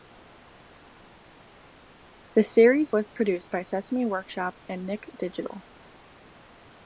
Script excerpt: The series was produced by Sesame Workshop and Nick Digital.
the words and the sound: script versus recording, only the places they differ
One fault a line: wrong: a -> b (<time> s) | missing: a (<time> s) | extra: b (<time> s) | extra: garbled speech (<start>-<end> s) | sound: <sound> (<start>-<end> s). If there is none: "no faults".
no faults